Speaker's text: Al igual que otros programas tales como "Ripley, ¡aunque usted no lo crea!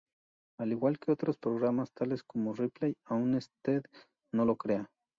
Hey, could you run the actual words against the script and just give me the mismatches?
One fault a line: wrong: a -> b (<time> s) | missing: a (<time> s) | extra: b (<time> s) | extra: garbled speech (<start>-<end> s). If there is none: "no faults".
no faults